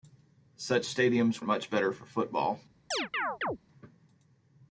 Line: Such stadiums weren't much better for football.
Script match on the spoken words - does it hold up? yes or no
no